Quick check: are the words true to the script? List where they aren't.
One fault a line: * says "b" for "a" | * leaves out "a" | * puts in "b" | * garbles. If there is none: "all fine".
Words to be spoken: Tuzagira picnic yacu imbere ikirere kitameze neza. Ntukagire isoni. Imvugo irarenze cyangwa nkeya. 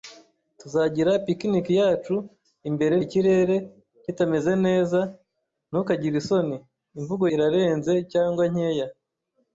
all fine